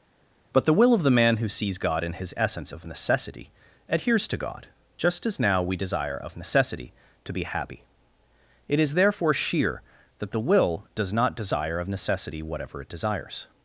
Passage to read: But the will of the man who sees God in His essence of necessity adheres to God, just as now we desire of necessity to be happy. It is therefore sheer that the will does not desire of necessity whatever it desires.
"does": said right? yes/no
yes